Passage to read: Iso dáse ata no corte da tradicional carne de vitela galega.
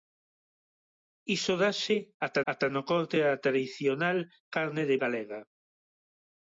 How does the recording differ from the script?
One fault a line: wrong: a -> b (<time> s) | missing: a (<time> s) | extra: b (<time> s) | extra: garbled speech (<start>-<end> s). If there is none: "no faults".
extra: ata (2.5 s)
missing: vitela (5.0 s)